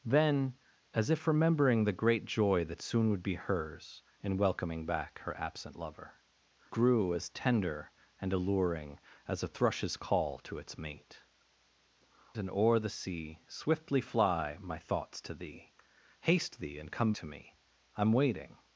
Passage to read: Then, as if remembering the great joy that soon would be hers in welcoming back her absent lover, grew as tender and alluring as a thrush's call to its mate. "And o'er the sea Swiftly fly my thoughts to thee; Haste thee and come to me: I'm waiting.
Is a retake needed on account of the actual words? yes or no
no